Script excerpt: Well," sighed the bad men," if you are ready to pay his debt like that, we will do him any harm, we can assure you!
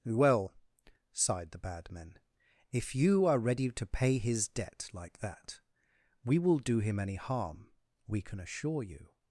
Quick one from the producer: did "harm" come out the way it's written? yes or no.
yes